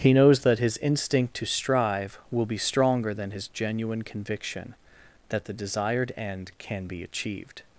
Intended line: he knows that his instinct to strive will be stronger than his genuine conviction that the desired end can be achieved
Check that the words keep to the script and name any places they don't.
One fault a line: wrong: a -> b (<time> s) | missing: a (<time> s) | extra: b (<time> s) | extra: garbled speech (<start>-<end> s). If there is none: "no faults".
no faults